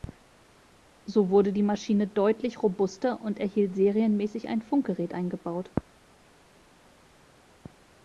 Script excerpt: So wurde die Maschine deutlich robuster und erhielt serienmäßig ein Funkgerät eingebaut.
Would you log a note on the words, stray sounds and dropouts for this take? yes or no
no